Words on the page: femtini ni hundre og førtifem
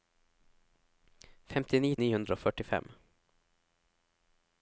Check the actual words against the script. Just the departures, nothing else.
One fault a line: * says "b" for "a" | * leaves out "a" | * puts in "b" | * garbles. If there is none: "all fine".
all fine